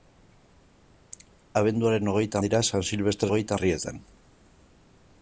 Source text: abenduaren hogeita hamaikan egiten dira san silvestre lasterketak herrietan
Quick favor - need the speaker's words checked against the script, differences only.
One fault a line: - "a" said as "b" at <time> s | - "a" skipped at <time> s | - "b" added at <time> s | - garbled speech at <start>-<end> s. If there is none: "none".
- "hamaikan egiten" skipped at 2.4 s
- "lasterketak" said as "hogeita" at 3.3 s